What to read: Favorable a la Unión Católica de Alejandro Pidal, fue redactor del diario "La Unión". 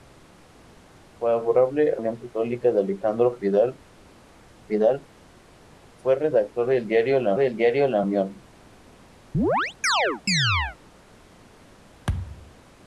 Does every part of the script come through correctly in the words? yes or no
no